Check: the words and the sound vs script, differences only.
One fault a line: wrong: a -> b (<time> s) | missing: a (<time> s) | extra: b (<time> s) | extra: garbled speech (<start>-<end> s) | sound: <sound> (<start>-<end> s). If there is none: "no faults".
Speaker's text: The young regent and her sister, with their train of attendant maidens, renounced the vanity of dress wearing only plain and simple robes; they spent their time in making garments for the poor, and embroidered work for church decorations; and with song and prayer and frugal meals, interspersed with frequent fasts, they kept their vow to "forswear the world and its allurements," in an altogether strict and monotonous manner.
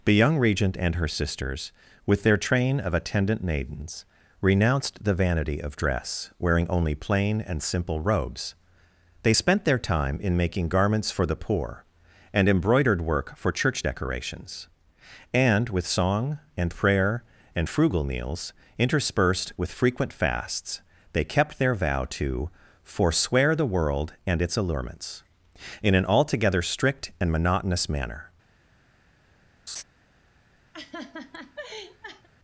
wrong: sister -> sisters (1.1 s)
sound: laugh (29.7-29.8 s)
sound: laugh (30.7-32.3 s)